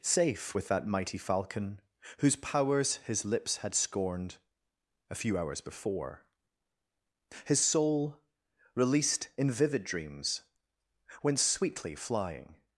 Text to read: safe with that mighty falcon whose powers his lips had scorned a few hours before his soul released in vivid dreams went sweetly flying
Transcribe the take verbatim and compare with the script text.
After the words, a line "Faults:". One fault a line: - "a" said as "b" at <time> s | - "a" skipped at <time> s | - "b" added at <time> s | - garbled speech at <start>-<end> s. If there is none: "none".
safe with that mighty falcon whose powers his lips had scorned a few hours before his soul released in vivid dreams went sweetly flying
Faults:
none